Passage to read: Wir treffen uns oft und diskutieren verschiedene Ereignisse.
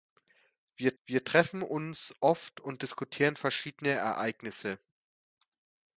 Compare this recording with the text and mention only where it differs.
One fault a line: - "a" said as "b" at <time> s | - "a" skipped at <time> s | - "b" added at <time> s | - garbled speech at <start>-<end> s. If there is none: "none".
- "wir" added at 1.0 s